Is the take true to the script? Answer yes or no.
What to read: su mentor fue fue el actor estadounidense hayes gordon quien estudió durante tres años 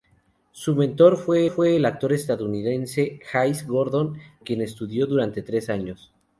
yes